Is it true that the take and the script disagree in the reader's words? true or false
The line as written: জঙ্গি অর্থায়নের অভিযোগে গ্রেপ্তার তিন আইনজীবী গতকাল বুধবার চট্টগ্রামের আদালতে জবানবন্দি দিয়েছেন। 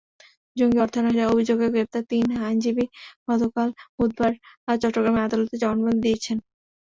false